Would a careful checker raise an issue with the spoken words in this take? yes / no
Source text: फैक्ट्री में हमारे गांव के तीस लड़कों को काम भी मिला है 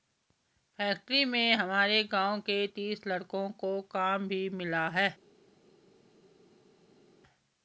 no